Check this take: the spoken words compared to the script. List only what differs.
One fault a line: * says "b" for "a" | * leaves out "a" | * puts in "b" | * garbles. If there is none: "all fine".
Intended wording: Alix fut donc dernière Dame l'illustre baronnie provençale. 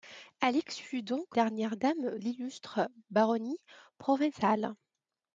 all fine